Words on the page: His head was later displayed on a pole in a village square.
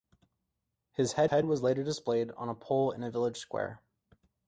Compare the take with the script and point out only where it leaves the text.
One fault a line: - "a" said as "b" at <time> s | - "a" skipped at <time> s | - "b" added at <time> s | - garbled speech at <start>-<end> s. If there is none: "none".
- "head" added at 1.3 s